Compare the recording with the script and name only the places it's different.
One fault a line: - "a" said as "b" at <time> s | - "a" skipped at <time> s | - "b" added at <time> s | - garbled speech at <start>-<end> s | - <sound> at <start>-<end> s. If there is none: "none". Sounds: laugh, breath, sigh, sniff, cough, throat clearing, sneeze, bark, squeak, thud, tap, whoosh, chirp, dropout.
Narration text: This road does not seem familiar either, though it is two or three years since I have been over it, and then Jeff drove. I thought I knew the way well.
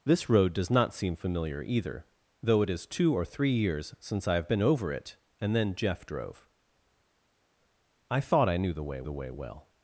- "the way" added at 9.0 s